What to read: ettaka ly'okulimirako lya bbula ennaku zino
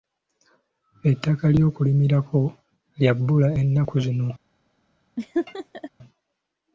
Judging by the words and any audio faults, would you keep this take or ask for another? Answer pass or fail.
fail